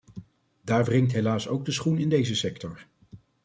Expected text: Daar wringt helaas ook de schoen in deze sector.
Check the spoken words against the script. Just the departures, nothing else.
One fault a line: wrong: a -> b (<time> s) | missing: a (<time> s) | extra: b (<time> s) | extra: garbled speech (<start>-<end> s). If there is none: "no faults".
no faults